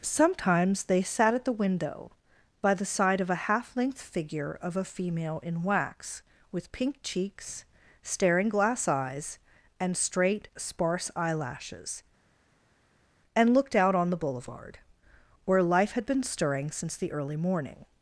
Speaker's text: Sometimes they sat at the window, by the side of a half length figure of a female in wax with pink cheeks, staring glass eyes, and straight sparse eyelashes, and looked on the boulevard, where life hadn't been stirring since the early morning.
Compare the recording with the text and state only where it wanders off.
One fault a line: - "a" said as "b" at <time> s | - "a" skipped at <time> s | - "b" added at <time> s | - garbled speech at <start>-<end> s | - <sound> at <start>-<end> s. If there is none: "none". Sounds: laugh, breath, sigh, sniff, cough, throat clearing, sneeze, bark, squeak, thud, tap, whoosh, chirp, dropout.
- "out" added at 13.7 s
- "hadn't" said as "had" at 15.9 s